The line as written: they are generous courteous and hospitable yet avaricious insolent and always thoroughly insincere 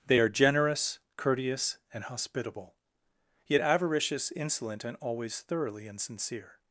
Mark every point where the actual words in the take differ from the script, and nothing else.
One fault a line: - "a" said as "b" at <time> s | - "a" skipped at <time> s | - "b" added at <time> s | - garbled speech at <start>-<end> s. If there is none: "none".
none